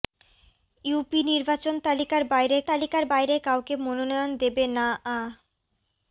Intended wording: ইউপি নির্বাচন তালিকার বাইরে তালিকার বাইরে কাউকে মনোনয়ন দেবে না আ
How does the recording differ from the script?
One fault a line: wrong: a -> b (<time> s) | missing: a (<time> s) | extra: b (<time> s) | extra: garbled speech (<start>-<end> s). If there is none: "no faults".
no faults